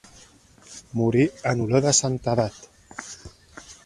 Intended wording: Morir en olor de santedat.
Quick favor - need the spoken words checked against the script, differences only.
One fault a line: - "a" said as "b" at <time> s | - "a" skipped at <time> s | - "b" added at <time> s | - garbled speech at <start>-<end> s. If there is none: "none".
none